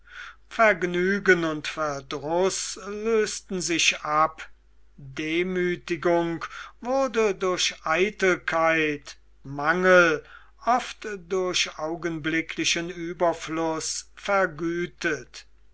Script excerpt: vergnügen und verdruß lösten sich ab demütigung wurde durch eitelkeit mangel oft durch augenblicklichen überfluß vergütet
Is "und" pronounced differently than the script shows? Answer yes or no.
no